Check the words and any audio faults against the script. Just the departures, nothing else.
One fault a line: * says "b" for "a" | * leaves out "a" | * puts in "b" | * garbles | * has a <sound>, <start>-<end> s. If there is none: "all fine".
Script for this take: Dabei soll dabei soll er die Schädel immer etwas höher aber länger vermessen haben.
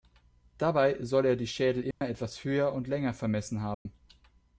* leaves out "dabei soll"
* has a dropout, 1.9-2.0 s
* says "und" for "aber"
* has a dropout, 3.7-3.9 s